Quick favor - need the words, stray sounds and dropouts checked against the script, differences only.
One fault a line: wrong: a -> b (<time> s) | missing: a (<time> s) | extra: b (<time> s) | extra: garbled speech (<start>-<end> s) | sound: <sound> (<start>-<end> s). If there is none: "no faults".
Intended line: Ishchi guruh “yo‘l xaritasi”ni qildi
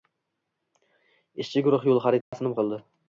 sound: dropout (2.2-2.3 s)